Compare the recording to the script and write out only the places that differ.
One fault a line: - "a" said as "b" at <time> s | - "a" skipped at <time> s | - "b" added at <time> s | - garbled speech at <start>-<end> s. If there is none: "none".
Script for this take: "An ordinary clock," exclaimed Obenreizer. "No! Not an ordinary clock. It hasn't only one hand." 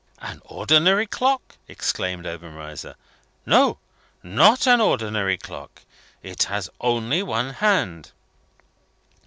- "hasn't" said as "has" at 6.5 s